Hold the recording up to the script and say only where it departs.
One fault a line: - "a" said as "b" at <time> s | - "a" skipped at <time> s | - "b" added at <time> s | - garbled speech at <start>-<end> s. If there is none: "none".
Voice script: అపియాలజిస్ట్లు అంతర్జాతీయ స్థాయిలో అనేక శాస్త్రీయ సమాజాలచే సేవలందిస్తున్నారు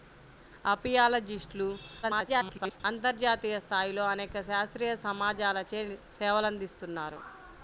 - garbled speech at 2.0-2.8 s